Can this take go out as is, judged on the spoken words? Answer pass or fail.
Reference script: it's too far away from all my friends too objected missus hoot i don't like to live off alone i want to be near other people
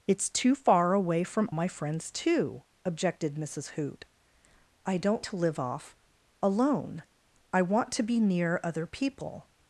fail